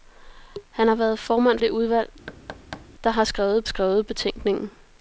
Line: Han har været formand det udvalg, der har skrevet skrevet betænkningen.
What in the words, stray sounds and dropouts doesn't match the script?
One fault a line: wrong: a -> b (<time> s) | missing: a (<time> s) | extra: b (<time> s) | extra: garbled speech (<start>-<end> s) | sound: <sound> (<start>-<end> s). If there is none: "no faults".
sound: thud (2.3-2.9 s)